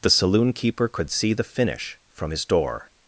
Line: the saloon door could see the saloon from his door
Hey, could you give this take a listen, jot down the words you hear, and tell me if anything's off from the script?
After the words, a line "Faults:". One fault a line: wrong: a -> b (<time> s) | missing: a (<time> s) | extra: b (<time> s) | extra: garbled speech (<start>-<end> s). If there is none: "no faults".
the saloon keeper could see the finish from his door
Faults:
wrong: door -> keeper (0.5 s)
wrong: saloon -> finish (1.4 s)